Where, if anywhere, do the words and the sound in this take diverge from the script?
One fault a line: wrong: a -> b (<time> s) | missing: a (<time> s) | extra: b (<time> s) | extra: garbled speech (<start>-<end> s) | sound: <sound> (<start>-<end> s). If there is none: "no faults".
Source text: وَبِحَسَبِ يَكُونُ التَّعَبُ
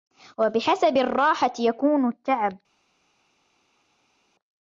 extra: الرَّاحَةِ (1.0 s)